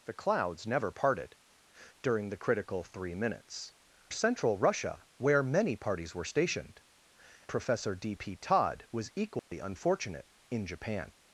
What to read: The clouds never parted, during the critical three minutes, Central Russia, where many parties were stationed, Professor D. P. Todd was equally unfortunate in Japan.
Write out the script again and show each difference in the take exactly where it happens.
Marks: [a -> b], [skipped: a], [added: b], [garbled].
The clouds never parted, during the critical three minutes, Central Russia, where many parties were stationed, Professor D. P. Todd was equally unfortunate in Japan.